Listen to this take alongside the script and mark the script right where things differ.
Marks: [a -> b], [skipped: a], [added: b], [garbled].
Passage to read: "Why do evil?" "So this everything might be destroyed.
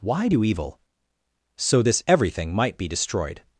"Why do evil?" "So this everything might be destroyed.